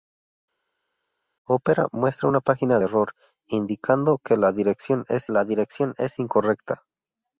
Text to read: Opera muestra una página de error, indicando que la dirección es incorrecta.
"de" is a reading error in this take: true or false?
true